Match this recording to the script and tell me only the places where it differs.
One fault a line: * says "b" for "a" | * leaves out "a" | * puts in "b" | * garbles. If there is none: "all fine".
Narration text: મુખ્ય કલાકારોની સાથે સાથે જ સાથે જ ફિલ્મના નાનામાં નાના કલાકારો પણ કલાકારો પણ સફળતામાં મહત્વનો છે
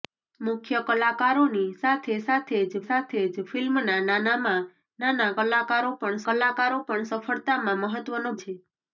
all fine